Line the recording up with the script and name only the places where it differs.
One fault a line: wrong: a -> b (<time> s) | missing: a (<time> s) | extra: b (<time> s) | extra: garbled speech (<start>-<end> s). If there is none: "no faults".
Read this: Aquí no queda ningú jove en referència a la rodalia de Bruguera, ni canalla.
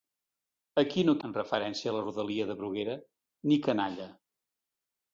missing: queda ningú jove (1.1 s)